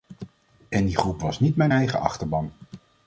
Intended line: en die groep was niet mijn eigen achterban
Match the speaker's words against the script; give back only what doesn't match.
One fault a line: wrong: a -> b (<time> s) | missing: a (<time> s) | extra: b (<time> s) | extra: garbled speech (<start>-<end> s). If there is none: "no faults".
no faults